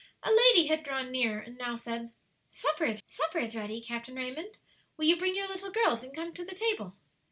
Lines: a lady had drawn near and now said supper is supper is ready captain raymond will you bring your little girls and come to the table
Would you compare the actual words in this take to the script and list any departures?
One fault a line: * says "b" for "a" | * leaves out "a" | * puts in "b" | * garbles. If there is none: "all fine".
all fine